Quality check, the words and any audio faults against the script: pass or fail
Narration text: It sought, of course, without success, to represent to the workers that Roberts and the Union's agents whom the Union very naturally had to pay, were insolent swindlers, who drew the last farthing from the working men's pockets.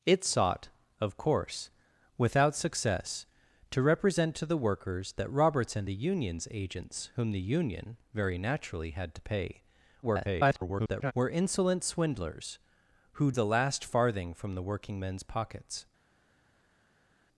fail